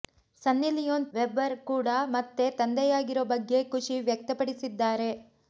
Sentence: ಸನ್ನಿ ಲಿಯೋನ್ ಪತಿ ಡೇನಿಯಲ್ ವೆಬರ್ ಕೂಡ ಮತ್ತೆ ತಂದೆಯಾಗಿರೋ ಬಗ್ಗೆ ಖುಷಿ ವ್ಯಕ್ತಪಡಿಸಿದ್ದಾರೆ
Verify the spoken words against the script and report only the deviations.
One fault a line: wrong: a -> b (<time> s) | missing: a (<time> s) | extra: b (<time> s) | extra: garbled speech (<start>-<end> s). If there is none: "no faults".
missing: ಪತಿ ಡೇನಿಯಲ್ (1.1 s)